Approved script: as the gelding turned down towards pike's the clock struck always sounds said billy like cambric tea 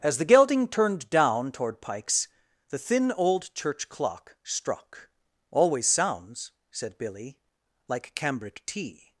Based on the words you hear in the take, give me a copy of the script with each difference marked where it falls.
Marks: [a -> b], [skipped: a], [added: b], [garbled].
as the gelding turned down [towards -> toward] pike's the [added: thin old church] clock struck always sounds said billy like cambric tea